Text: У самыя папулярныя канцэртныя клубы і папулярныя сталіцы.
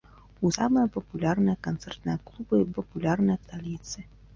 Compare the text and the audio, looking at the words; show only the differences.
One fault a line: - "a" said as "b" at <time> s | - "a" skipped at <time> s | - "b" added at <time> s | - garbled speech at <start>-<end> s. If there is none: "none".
none